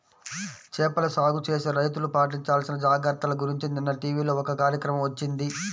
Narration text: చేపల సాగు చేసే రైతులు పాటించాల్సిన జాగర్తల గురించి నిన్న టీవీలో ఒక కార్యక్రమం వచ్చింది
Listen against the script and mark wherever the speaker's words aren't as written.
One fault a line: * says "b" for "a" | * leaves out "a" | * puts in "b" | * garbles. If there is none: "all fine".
all fine